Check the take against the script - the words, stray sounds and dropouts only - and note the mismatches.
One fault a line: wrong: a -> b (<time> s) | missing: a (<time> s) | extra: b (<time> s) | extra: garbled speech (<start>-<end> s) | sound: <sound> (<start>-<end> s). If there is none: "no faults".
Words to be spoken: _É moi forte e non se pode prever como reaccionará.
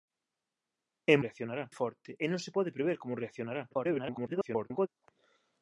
wrong: moi -> reaccionará (1.2 s)
extra: garbled speech (3.7-4.9 s)